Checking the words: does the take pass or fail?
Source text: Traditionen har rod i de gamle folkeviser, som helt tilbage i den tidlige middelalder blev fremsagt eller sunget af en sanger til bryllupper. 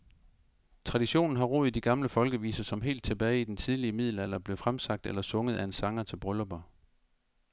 pass